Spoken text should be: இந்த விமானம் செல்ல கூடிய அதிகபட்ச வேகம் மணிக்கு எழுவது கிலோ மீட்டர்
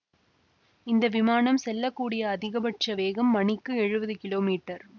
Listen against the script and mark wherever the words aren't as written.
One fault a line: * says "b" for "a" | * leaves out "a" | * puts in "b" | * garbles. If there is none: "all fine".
all fine